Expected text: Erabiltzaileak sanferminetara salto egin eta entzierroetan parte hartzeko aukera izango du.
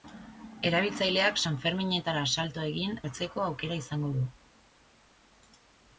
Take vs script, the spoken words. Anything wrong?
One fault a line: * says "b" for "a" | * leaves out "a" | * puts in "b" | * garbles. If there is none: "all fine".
* leaves out "eta entzierroetan parte"